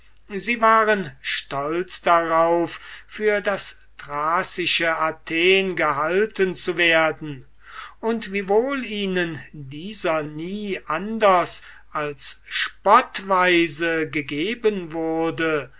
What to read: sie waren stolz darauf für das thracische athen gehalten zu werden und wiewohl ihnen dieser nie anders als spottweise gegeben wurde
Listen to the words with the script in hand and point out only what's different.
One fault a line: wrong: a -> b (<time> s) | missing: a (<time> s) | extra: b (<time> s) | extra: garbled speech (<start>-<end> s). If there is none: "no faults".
no faults